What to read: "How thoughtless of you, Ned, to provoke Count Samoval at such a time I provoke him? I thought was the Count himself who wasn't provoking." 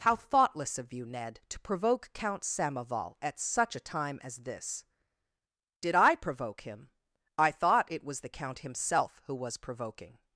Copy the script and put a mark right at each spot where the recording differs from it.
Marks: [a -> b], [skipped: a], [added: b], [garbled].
"How thoughtless of you, Ned, to provoke Count Samoval at such a time [added: as this Did] I provoke him? I thought [added: it] was the Count himself who [wasn't -> was] provoking."